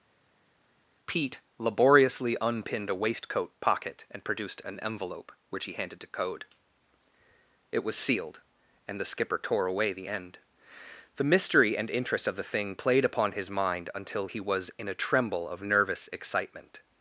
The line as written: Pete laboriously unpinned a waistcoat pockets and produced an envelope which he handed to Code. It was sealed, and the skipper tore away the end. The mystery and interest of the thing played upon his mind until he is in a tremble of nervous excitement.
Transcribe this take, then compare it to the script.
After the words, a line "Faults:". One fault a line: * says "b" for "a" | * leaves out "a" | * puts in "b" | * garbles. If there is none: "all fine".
Pete laboriously unpinned a waistcoat pocket and produced an envelope which he handed to Code. It was sealed, and the skipper tore away the end. The mystery and interest of the thing played upon his mind until he was in a tremble of nervous excitement.
Faults:
* says "pocket" for "pockets"
* says "was" for "is"